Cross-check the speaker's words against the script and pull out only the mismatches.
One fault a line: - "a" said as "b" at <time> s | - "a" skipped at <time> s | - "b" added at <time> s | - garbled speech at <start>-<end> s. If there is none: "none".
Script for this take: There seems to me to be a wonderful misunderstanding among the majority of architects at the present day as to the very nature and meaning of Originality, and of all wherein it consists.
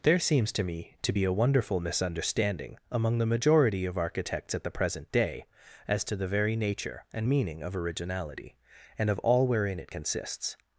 none